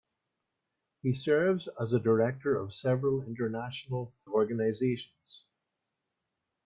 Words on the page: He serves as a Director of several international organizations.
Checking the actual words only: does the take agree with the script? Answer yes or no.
yes